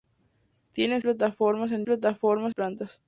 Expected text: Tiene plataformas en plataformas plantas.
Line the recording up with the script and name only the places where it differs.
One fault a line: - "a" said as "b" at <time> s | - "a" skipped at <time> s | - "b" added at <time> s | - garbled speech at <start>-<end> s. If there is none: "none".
none